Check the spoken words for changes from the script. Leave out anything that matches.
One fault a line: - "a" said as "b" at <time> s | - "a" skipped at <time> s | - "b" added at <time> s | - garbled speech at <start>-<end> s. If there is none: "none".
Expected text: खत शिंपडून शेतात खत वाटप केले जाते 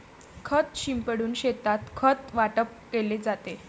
none